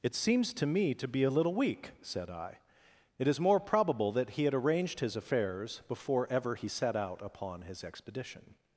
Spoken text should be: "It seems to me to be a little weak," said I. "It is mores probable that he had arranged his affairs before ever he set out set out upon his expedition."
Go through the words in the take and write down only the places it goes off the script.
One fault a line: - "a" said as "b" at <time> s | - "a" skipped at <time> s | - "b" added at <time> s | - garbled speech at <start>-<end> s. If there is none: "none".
- "mores" said as "more" at 3.4 s
- "set out" skipped at 7.2 s